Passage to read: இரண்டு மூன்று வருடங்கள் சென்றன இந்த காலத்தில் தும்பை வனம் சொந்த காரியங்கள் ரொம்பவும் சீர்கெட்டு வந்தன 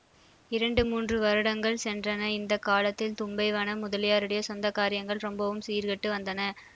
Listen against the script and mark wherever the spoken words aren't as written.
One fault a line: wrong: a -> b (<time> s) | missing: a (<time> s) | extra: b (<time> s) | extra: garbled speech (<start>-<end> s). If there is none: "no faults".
extra: முதலியாருடைய (3.8 s)